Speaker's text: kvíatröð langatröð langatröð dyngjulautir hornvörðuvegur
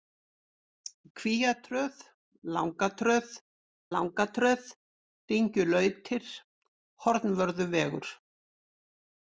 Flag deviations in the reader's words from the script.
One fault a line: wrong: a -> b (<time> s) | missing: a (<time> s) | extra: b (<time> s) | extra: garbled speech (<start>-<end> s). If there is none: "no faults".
no faults